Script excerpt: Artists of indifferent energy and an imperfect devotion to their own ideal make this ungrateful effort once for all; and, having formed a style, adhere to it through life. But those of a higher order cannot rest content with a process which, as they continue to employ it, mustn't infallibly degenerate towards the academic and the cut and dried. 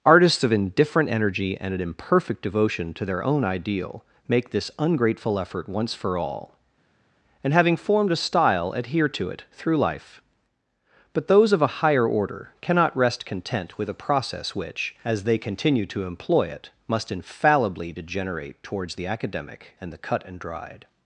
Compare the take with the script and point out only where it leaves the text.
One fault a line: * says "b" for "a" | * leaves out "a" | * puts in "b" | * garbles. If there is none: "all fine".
* says "must" for "mustn't"